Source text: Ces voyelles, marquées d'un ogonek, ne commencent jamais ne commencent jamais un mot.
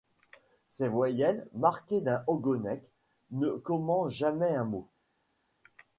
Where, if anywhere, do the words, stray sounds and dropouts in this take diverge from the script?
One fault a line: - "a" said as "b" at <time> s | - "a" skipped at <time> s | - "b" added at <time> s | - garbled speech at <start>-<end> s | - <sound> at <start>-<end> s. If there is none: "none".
- "ne commencent jamais" skipped at 4.5 s